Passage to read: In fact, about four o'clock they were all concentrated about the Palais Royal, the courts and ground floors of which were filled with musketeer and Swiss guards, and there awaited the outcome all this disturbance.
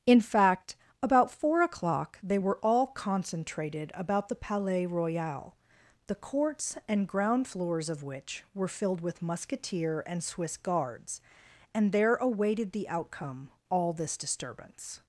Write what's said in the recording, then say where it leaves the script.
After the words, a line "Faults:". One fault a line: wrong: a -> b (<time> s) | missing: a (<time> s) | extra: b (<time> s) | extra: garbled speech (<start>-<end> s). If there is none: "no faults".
In fact, about four o'clock they were all concentrated about the Palais Royal, the courts and ground floors of which were filled with musketeer and Swiss guards, and there awaited the outcome all this disturbance.
Faults:
no faults